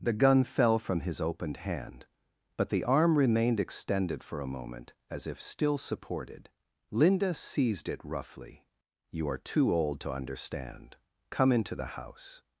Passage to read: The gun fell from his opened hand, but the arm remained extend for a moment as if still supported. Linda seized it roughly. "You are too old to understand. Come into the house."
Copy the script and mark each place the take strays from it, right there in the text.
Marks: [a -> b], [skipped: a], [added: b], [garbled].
The gun fell from his opened hand, but the arm remained [extend -> extended] for a moment as if still supported. Linda seized it roughly. "You are too old to understand. Come into the house."